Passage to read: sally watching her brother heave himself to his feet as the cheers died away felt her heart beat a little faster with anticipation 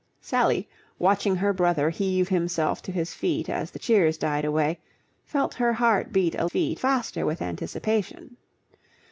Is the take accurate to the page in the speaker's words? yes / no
no